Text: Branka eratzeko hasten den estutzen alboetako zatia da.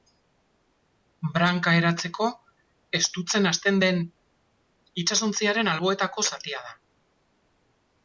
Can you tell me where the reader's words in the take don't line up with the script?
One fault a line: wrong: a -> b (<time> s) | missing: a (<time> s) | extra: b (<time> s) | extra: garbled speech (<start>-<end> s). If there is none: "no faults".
extra: estutzen (3.0 s)
wrong: estutzen -> itsasontziaren (5.1 s)